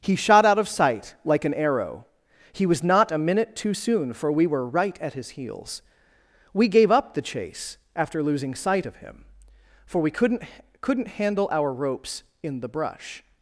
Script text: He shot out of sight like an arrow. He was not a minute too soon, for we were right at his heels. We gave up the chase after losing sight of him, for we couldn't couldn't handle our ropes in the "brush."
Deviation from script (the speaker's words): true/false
false